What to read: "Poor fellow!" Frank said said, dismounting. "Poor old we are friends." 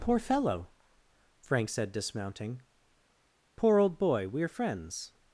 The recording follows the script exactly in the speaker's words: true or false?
false